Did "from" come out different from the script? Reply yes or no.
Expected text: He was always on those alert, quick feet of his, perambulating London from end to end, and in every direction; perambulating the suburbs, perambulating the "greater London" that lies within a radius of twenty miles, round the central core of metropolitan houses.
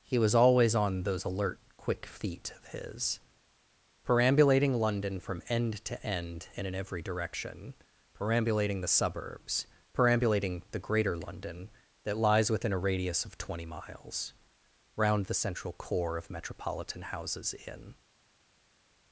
no